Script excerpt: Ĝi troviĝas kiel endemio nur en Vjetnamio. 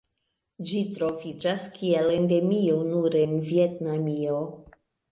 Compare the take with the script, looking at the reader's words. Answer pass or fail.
pass